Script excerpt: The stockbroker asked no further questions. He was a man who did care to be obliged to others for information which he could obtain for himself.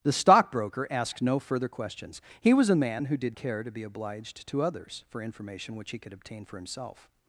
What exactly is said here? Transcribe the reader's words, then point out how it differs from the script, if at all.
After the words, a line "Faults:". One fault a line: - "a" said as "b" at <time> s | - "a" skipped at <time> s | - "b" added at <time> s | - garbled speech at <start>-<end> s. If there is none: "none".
The stockbroker asked no further questions. He was a man who did care to be obliged to others for information which he could obtain for himself.
Faults:
none